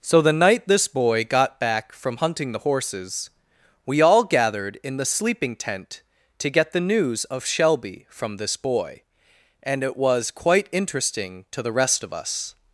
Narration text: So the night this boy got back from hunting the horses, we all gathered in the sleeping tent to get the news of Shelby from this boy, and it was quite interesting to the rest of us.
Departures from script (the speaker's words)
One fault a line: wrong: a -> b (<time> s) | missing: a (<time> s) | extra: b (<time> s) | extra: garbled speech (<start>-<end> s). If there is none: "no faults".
no faults